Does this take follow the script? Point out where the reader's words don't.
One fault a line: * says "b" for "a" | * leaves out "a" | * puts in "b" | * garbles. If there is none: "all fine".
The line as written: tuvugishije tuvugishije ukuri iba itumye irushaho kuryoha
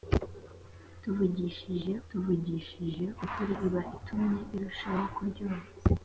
all fine